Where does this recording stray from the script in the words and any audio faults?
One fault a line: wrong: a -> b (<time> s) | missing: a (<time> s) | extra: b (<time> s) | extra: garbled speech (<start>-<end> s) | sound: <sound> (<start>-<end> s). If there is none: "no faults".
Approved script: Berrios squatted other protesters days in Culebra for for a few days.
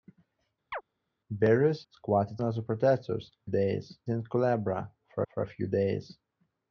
sound: chirp (0.7-0.8 s)